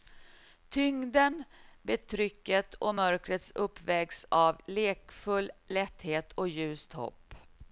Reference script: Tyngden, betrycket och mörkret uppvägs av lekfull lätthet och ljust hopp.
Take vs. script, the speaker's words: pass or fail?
pass